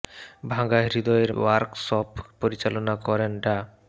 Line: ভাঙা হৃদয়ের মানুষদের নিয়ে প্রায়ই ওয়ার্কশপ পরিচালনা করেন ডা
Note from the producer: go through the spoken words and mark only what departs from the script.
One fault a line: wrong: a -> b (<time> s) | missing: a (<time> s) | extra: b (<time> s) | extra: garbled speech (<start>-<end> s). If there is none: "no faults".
missing: মানুষদের নিয়ে প্রায়ই (1.3 s)